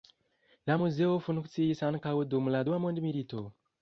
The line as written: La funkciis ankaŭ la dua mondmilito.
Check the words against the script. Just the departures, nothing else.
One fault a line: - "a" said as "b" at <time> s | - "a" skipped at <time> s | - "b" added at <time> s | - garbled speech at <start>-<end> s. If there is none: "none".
- "muzeo" added at 0.8 s
- "dum" added at 2.4 s